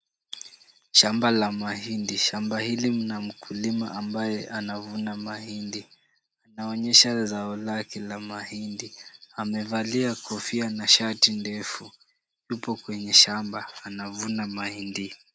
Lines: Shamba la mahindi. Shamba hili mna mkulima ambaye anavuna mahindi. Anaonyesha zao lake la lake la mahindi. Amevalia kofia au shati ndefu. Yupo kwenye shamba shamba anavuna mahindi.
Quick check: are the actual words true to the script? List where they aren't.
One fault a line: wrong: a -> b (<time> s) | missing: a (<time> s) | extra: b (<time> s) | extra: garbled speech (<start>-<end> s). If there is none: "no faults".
missing: lake la (8.2 s)
wrong: au -> na (10.7 s)
missing: shamba (13.7 s)